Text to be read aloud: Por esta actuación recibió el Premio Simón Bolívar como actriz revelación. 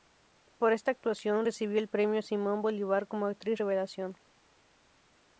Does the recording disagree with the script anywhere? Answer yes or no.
no